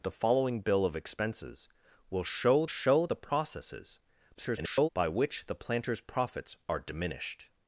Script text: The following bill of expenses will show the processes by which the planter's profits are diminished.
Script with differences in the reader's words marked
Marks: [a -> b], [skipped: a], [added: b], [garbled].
The following bill of expenses will show [added: show] the processes [garbled] by which the planter's profits are diminished.